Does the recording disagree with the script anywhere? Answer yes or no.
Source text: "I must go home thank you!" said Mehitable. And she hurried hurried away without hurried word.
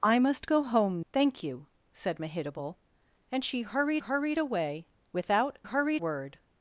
no